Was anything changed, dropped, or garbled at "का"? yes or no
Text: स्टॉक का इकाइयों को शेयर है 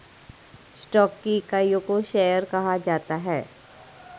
yes